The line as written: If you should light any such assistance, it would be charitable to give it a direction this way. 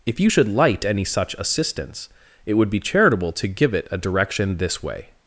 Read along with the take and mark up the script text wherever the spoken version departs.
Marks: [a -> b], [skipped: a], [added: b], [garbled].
If you should light any such assistance, it would be charitable to give it a direction this way.